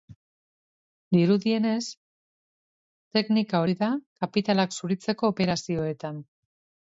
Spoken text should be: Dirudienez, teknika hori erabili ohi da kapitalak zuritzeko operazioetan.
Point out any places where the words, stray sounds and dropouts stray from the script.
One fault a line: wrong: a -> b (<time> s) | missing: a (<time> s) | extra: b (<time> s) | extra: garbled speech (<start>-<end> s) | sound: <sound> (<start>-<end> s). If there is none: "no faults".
missing: hori erabili (3.6 s)